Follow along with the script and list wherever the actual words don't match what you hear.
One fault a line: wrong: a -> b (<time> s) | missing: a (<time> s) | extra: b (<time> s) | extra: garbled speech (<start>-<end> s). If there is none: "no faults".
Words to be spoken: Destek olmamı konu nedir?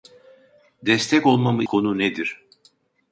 no faults